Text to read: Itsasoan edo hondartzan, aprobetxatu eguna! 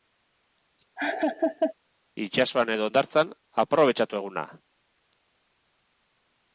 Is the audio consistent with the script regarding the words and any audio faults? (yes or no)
no